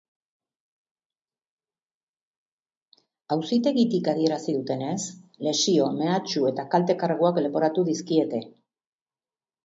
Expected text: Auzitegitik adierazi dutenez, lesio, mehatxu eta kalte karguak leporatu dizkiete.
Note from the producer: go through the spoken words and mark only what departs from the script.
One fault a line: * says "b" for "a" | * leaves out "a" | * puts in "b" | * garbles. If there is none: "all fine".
all fine